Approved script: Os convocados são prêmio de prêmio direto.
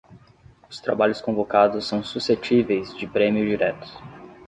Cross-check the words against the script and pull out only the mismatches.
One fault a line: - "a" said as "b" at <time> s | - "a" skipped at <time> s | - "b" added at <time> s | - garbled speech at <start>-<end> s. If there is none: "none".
- "trabalhos" added at 0.8 s
- "prêmio" said as "suscetíveis" at 2.0 s